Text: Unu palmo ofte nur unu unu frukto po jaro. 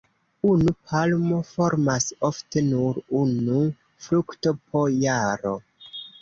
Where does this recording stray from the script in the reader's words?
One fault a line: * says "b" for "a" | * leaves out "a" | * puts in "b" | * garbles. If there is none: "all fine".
* puts in "formas"
* leaves out "unu"